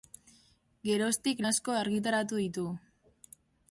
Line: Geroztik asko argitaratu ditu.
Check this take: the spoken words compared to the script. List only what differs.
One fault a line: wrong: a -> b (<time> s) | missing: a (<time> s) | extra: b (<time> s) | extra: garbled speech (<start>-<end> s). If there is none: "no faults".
no faults